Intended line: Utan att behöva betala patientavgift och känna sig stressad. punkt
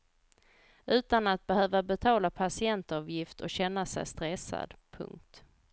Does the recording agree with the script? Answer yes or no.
yes